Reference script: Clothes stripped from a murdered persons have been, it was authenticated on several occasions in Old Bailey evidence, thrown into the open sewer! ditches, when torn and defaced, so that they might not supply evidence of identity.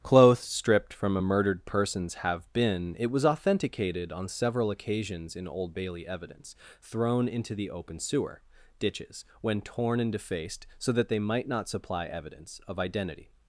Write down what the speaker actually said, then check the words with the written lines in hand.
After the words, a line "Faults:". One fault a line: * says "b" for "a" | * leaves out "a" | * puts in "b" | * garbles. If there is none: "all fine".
Clothes stripped from a murdered persons have been, it was authenticated on several occasions in Old Bailey evidence, thrown into the open sewer! ditches, when torn and defaced, so that they might not supply evidence of identity.
Faults:
all fine